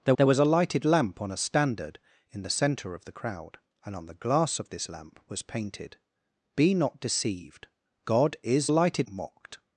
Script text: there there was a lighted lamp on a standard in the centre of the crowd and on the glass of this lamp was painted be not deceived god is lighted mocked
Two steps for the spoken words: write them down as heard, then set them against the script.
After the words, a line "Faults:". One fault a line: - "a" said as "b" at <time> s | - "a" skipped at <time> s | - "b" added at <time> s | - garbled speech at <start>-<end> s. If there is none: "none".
there there was a lighted lamp on a standard in the centre of the crowd and on the glass of this lamp was painted be not deceived god is lighted mocked
Faults:
none